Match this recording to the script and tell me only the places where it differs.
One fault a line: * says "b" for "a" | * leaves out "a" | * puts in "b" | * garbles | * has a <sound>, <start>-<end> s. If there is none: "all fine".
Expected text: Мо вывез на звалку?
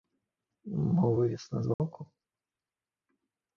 * has a dropout, 1.7-1.8 s